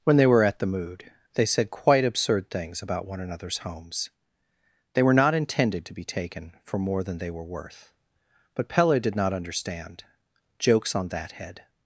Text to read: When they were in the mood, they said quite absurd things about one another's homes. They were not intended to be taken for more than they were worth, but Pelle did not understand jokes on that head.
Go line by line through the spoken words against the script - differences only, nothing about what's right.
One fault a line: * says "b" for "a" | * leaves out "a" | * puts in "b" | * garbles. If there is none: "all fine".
* says "at" for "in"